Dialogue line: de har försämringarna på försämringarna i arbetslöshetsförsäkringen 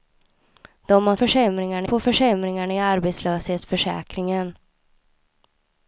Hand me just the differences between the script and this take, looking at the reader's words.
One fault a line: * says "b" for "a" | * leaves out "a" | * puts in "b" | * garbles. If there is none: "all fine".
all fine